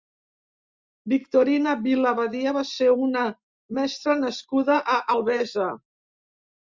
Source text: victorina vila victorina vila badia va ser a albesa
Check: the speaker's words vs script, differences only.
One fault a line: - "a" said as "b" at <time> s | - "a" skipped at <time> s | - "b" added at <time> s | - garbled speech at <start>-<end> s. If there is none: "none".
- "victorina vila" skipped at 2.1 s
- "una mestra nascuda" added at 3.1 s